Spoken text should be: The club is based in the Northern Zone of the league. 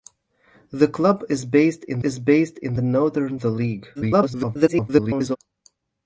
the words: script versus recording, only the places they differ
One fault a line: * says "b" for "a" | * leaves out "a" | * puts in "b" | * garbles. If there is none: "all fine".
* puts in "is based in"
* leaves out "Zone of"
* garbles